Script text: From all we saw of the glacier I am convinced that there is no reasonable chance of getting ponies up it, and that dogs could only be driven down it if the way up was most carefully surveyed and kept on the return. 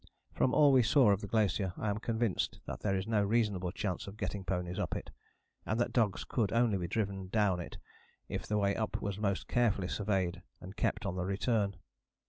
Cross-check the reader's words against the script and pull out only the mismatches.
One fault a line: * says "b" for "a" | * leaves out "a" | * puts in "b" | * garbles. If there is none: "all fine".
all fine